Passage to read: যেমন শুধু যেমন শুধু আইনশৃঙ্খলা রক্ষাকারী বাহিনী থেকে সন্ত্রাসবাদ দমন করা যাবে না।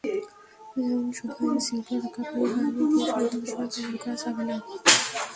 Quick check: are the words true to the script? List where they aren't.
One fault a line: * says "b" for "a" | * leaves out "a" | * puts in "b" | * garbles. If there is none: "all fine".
* leaves out "যেমন শুধু"
* says "দিয়ে" for "থেকে"